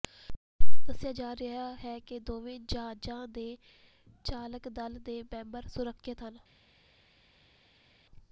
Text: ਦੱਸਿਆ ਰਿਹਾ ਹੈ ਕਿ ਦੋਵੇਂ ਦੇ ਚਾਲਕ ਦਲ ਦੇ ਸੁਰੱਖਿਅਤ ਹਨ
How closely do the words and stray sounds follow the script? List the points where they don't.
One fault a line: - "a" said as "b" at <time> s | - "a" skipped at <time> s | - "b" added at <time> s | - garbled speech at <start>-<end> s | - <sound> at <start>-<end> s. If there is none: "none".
- "ਜਾ" added at 1.1 s
- "ਜਹਾਜ਼ਾਂ" added at 2.6 s
- "ਮੈਂਬਰ" added at 5.2 s